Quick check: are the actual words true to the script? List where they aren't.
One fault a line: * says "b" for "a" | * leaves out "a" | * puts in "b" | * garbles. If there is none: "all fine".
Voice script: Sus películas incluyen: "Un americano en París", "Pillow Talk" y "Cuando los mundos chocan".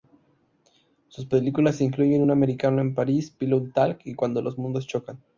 all fine